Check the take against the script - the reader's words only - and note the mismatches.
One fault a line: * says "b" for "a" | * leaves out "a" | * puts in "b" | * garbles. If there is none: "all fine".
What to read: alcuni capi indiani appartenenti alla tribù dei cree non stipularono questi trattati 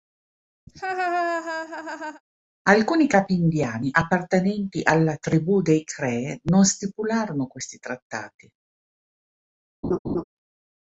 all fine